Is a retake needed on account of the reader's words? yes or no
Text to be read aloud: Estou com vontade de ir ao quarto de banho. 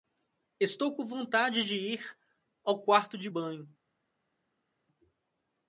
no